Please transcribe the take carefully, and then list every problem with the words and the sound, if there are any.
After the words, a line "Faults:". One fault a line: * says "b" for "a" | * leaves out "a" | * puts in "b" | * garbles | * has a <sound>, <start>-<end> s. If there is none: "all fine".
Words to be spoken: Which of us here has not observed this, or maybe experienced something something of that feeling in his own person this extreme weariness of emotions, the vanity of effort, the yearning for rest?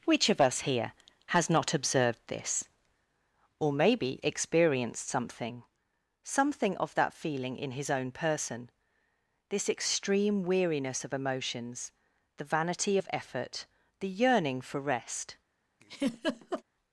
Which of us here has not observed this, or maybe experienced something something of that feeling in his own person this extreme weariness of emotions, the vanity of effort, the yearning for rest?
Faults:
* has a laugh, 15.8-16.6 s